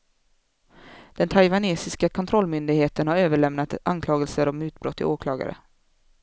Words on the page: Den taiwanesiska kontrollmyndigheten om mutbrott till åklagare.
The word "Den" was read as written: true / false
true